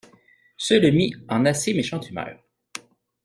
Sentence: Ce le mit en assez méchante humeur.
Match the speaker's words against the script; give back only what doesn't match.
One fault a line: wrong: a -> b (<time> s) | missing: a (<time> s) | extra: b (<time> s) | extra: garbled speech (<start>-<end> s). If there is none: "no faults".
no faults